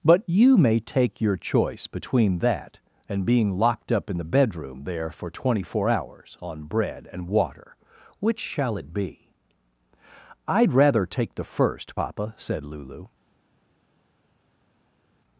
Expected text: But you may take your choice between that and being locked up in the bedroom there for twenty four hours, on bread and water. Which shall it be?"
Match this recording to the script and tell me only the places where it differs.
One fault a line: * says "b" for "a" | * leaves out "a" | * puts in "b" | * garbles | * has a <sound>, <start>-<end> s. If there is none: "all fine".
* puts in "I'd rather take the first papa said Lulu"